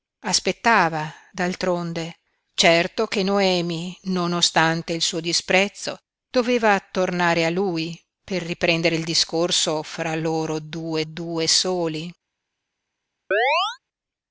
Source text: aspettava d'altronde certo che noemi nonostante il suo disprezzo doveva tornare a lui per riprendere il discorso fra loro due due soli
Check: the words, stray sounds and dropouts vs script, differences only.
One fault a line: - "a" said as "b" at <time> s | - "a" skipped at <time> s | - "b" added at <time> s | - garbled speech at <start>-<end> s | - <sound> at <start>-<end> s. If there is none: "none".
- chirp at 13.3-13.8 s